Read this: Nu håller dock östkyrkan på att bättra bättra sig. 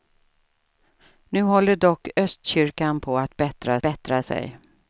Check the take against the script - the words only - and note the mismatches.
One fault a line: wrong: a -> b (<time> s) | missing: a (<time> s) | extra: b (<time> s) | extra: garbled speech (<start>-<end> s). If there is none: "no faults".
no faults